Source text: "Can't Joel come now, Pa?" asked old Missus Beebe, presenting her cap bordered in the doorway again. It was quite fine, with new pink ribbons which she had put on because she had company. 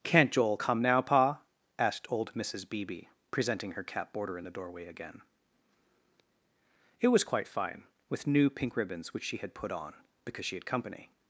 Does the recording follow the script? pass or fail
fail